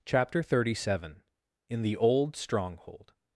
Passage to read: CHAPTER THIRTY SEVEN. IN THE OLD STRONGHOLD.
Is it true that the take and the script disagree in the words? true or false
false